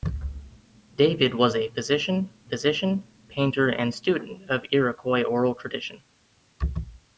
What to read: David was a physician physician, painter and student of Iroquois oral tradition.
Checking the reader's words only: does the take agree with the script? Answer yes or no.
yes